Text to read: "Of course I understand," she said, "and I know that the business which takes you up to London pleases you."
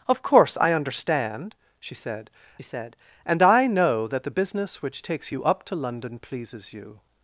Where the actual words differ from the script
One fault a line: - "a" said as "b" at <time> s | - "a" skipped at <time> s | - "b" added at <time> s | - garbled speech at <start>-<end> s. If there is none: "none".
- "said" added at 2.6 s